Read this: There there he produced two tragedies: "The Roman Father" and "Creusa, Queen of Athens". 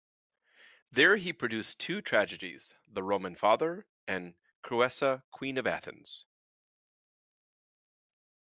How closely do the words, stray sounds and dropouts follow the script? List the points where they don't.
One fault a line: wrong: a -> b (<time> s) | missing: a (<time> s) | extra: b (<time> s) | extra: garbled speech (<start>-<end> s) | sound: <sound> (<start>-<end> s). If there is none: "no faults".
missing: there (1.1 s)